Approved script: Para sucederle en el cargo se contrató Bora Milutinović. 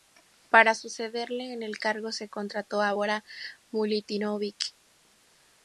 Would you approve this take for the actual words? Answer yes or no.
no